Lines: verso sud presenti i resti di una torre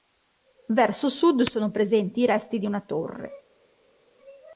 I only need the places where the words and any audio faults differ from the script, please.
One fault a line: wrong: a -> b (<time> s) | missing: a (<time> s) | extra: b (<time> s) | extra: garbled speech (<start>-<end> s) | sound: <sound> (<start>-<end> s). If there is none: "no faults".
extra: sono (1.4 s)